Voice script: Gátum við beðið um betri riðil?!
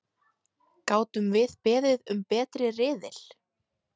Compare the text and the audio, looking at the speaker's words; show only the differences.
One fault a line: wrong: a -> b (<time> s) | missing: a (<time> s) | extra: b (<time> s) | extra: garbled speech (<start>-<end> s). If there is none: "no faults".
no faults